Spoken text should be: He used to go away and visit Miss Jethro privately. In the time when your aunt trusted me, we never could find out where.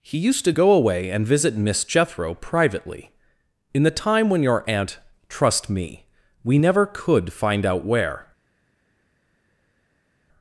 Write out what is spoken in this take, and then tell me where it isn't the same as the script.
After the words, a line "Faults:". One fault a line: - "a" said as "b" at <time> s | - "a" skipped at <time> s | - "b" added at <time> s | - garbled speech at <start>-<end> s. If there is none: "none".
He used to go away and visit Miss Jethro privately. In the time when your aunt trust me, we never could find out where.
Faults:
- "trusted" said as "trust" at 5.3 s